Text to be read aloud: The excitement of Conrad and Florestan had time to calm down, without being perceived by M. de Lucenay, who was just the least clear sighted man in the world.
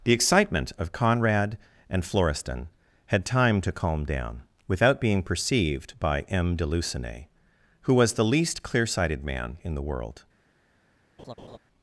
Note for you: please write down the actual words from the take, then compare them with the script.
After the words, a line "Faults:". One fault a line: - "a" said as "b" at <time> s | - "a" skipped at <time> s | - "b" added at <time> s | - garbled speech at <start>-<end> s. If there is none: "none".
The excitement of Conrad and Florestan had time to calm down, without being perceived by M. de Lucenay, who was the least clear sighted man in the world.
Faults:
- "just" skipped at 8.1 s